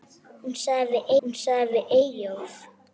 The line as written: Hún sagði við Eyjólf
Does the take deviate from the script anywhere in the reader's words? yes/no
yes